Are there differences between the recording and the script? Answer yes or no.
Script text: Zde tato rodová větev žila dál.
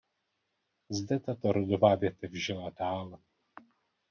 no